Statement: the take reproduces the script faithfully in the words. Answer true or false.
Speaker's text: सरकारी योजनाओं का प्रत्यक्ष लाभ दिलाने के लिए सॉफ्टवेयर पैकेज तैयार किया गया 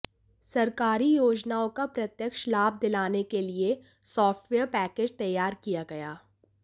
true